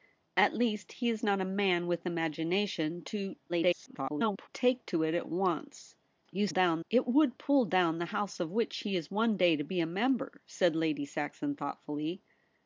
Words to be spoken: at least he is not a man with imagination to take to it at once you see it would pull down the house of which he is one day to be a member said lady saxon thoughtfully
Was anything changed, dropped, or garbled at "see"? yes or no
yes